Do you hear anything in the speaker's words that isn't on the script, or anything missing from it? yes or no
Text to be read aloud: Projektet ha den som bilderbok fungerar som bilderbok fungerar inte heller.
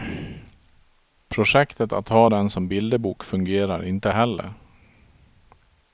yes